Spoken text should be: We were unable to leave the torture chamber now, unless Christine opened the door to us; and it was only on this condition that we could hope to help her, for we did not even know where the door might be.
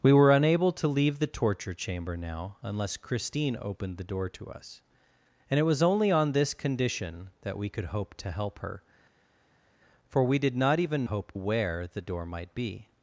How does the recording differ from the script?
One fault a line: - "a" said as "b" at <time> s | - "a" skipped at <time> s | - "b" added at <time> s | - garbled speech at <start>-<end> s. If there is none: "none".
- "know" said as "hope" at 11.0 s